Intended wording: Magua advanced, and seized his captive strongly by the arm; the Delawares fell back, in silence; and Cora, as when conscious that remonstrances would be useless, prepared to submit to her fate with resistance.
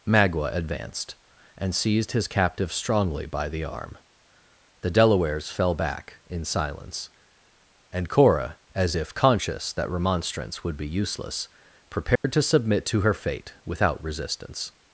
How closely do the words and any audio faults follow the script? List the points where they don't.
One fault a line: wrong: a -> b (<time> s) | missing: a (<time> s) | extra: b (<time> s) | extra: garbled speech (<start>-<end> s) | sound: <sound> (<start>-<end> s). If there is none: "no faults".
wrong: when -> if (8.9 s)
wrong: remonstrances -> remonstrance (9.9 s)
sound: dropout (12.2-12.2 s)
wrong: with -> without (13.7 s)